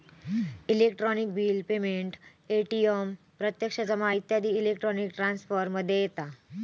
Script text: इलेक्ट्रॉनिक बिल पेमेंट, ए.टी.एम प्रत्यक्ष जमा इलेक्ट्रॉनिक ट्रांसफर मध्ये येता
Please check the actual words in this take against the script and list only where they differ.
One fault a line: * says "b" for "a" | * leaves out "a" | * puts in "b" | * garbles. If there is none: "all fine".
* puts in "इत्यादी"